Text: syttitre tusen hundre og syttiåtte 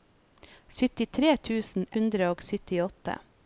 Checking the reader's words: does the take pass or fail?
pass